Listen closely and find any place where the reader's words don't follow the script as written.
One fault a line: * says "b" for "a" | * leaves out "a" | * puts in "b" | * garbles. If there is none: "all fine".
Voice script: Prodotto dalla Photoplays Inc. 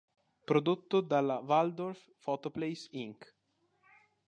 * puts in "Waldorf"